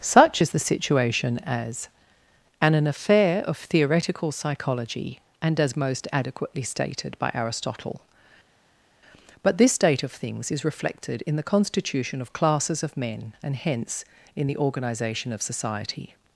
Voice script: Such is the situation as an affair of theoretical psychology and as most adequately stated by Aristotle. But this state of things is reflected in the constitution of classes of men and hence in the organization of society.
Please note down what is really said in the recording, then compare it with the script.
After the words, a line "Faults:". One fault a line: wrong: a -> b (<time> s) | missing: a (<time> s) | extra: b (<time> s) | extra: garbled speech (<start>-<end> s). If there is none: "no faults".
Such is the situation as an an affair of theoretical psychology and as most adequately stated by Aristotle. But this state of things is reflected in the constitution of classes of men and hence in the organization of society.
Faults:
extra: an (2.7 s)